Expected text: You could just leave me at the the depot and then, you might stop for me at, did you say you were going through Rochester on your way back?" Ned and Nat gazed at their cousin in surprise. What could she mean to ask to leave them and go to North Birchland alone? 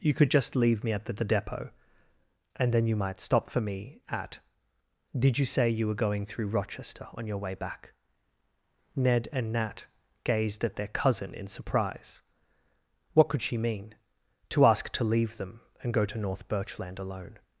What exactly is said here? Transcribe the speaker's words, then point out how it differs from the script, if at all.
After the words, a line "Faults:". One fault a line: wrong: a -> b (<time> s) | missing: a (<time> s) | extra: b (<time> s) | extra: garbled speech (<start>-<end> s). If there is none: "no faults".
You could just leave me at the the depot and then, you might stop for me at, did you say you were going through Rochester on your way back?" Ned and Nat gazed at their cousin in surprise. What could she mean to ask to leave them and go to North Birchland alone?
Faults:
no faults